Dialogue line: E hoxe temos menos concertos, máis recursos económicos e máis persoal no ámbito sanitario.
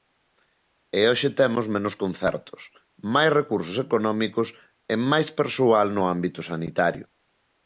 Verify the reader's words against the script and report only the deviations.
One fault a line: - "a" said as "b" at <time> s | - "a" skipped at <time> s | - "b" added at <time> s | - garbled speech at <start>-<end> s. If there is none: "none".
none